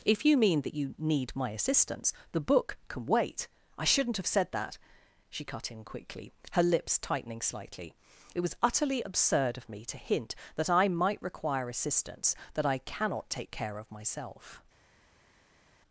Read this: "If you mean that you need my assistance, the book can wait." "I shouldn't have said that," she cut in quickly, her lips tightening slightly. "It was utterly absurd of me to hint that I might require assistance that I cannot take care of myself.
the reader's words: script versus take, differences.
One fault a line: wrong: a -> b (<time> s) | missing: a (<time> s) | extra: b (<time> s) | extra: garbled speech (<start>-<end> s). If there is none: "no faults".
no faults